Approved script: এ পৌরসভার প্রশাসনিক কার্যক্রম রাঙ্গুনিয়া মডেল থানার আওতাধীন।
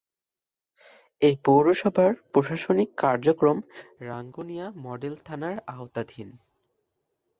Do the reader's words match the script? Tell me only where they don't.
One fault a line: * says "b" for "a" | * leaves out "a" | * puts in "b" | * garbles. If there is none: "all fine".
all fine